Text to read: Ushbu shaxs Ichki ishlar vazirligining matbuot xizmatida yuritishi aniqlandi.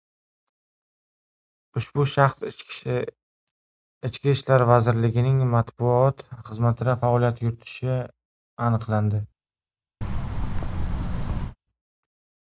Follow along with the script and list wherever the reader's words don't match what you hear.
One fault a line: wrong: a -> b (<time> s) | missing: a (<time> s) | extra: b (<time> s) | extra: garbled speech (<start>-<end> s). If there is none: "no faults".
extra: faoliyat (7.0 s)